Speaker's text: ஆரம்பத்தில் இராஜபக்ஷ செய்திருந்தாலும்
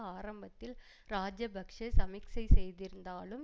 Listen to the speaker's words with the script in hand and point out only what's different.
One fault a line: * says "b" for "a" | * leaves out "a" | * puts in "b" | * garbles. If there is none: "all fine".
* puts in "சமிக்சை"